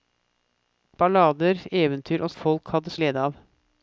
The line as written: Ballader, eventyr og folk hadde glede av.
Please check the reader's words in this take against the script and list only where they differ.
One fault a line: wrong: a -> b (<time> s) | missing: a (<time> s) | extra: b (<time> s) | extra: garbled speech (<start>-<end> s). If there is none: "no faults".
no faults